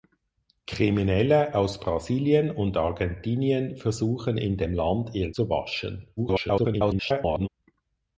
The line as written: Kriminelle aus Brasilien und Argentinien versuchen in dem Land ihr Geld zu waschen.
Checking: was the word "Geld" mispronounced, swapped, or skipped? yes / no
yes